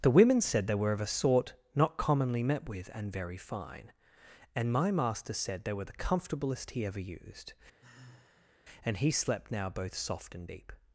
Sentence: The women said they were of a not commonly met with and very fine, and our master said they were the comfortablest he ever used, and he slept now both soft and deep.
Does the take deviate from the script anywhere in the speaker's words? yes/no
yes